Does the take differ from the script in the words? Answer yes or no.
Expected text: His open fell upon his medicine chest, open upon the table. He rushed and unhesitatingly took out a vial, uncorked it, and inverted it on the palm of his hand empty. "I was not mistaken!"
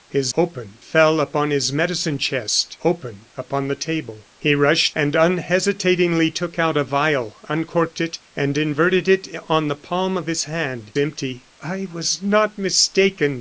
no